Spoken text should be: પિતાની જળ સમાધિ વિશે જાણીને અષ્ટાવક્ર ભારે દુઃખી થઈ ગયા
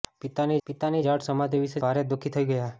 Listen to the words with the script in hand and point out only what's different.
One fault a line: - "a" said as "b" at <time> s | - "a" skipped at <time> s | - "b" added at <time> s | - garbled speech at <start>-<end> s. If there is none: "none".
- "પિતાની" added at 0.7 s
- "જાણીને અષ્ટાવક્ર" skipped at 1.8 s